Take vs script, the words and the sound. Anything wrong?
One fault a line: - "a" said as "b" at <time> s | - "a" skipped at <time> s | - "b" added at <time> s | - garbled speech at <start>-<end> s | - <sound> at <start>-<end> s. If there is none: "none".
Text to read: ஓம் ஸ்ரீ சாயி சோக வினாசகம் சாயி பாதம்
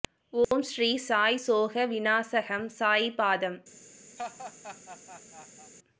- dropout at 0.4-0.5 s
- laugh at 4.2-5.7 s